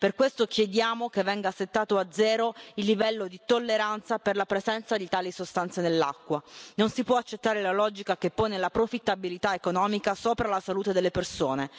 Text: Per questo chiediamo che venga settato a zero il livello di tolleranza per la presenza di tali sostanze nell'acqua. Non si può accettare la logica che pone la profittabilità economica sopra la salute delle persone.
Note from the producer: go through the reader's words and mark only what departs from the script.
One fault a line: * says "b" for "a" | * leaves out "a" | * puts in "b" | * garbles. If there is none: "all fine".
all fine